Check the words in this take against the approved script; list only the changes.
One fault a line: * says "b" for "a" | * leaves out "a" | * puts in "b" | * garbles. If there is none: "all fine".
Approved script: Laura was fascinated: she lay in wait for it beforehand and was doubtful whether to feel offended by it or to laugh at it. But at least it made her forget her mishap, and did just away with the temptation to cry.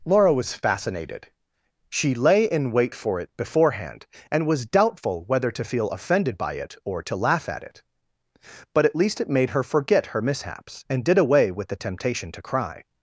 * says "mishaps" for "mishap"
* leaves out "just"